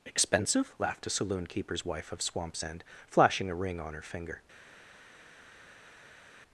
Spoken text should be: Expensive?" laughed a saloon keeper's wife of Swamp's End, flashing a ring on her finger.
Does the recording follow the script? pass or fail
pass